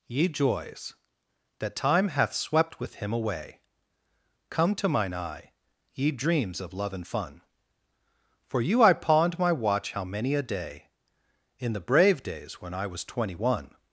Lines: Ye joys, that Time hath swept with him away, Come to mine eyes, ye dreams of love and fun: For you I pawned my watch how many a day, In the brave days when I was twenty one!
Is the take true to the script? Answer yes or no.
no